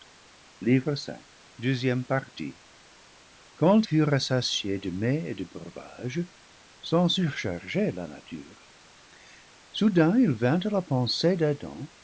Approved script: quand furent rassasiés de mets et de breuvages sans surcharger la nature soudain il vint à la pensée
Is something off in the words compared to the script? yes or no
no